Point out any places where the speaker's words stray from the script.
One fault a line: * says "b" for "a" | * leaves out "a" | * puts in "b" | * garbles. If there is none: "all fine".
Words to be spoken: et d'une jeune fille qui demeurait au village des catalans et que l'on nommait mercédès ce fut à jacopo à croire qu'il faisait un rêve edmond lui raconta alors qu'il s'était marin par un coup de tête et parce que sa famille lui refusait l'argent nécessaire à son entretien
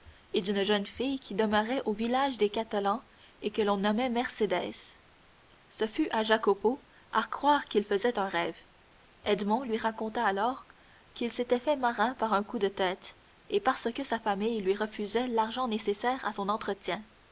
* puts in "fait"